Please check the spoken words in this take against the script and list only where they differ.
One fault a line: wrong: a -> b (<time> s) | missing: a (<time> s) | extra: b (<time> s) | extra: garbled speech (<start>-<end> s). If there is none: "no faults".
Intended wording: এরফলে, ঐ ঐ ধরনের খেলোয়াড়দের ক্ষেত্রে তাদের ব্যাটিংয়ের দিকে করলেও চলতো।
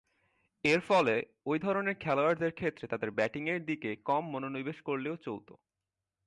missing: ঐ (1.6 s)
extra: কম মনোনিবেশ (4.0 s)